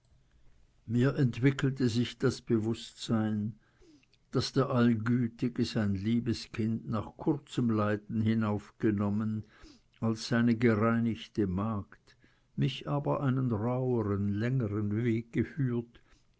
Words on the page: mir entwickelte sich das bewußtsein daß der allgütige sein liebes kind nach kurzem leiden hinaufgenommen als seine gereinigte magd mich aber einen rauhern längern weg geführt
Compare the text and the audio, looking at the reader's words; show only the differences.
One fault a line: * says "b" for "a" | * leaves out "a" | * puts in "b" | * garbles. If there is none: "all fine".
all fine